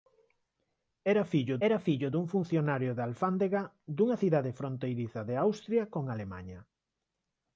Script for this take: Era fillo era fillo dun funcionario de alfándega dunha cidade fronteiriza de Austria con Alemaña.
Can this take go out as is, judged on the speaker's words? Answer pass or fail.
pass